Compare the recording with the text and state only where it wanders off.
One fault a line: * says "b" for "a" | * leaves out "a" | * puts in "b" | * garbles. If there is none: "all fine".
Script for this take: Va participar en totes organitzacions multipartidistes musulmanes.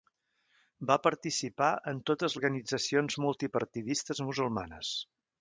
all fine